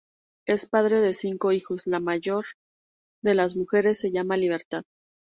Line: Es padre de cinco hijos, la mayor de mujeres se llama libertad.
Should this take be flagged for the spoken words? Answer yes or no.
yes